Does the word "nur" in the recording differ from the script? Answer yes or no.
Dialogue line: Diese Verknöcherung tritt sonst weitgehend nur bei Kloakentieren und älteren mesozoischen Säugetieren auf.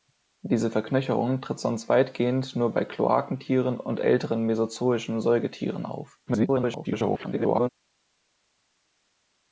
no